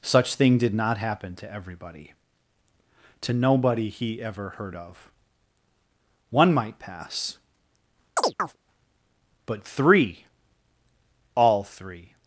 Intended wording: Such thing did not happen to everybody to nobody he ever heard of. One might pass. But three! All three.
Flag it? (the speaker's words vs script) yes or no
no